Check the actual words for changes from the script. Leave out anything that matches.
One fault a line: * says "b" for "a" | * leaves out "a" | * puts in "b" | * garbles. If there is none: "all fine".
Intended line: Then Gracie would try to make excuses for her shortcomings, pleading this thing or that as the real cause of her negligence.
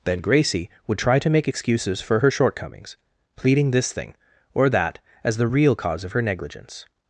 all fine